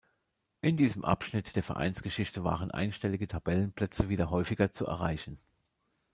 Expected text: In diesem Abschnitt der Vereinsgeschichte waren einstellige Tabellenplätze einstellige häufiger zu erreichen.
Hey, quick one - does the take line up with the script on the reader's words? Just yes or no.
no